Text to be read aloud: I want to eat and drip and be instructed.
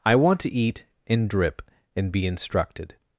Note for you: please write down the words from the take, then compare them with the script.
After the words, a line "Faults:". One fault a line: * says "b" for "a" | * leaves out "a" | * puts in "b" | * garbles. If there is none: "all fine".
I want to eat and drip and be instructed.
Faults:
all fine